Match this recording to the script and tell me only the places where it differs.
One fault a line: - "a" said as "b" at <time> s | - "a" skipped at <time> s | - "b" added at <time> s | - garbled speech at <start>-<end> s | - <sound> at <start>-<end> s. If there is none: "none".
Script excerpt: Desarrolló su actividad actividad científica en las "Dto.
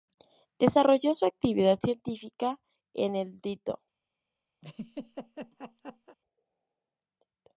- "actividad" skipped at 1.8 s
- "las" said as "el" at 3.1 s
- laugh at 4.6-6.2 s